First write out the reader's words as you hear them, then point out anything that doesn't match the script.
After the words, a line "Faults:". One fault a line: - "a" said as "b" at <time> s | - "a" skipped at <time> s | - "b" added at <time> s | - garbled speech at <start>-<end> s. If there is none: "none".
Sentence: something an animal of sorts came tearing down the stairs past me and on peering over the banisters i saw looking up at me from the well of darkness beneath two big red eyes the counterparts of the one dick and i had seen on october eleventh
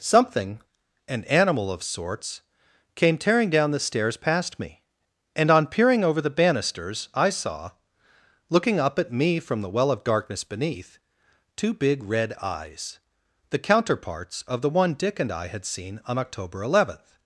something an animal of sorts came tearing down the stairs past me and on peering over the banisters i saw looking up at me from the well of darkness beneath two big red eyes the counterparts of the one dick and i had seen on october eleventh
Faults:
none